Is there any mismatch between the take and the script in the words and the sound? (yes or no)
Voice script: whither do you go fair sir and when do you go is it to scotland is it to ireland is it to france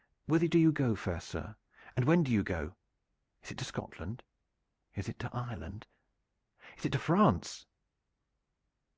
no